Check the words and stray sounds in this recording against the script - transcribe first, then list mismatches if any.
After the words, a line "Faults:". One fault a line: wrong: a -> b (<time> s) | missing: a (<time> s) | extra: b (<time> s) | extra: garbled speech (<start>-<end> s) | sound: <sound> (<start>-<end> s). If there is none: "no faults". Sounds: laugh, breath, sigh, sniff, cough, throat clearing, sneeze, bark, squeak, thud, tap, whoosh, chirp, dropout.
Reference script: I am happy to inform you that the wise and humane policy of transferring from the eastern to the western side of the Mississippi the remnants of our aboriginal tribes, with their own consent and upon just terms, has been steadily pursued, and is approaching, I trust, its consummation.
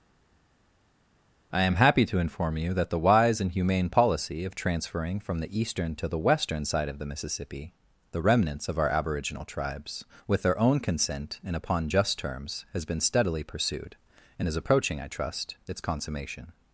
I am happy to inform you that the wise and humane policy of transferring from the eastern to the western side of the Mississippi the remnants of our aboriginal tribes, with their own consent and upon just terms, has been steadily pursued, and is approaching, I trust, its consummation.
Faults:
no faults